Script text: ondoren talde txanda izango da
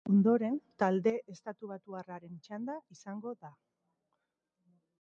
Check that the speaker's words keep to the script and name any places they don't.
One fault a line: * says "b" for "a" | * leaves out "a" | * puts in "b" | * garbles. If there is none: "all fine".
* puts in "estatubatuarraren"